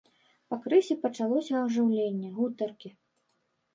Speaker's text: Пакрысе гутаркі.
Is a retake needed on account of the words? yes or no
yes